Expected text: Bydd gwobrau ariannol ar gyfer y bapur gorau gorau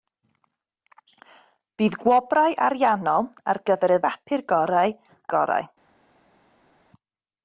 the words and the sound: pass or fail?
pass